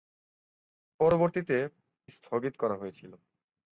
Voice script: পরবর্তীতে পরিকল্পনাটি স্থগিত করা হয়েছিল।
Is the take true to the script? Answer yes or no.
no